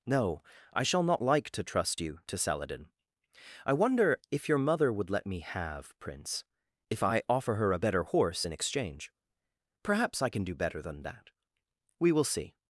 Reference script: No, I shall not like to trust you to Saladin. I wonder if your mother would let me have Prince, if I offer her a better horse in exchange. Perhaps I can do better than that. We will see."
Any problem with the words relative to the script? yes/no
no